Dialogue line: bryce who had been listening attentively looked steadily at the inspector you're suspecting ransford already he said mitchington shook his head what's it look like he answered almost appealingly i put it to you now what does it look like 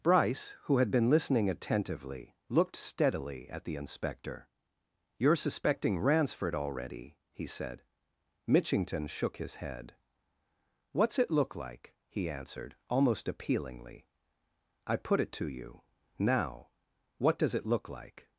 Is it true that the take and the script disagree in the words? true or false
false